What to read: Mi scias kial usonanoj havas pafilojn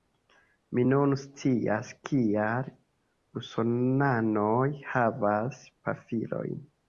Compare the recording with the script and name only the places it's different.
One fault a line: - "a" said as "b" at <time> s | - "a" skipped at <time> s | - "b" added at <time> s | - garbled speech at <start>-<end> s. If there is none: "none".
- "nun" added at 0.9 s